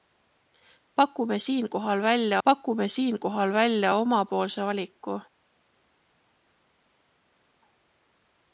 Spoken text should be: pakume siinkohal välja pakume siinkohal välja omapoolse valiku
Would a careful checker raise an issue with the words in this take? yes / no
no